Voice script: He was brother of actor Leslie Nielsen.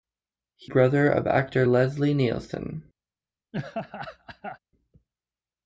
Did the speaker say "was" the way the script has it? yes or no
no